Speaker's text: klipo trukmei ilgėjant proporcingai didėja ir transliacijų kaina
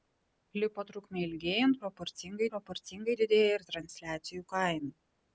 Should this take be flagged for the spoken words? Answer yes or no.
yes